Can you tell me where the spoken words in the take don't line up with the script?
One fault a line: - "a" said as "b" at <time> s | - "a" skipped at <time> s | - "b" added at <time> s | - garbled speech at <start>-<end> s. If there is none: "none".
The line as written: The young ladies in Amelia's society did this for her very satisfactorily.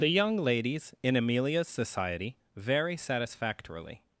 - "did this for her" skipped at 2.4 s